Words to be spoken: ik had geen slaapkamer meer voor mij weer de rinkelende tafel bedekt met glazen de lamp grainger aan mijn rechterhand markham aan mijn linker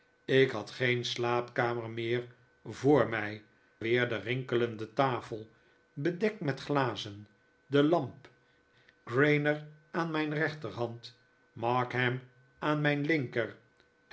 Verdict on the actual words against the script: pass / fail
pass